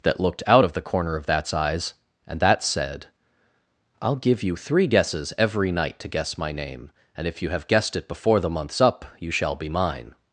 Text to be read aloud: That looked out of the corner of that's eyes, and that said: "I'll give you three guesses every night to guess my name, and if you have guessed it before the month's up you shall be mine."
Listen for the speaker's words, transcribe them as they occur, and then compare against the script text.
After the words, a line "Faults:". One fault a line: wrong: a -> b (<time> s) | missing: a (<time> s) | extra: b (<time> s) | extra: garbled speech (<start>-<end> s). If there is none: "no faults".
That looked out of the corner of that's eyes, and that said: "I'll give you three guesses every night to guess my name, and if you have guessed it before the month's up you shall be mine."
Faults:
no faults